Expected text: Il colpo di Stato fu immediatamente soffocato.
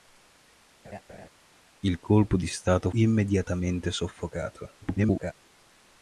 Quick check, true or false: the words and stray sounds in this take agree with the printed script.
false